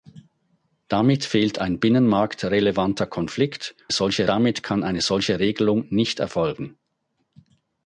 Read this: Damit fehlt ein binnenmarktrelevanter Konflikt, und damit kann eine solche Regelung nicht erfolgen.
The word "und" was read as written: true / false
false